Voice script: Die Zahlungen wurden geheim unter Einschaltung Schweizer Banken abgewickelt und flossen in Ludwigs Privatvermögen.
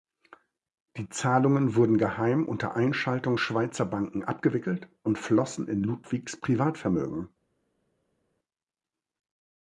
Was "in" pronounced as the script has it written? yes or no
yes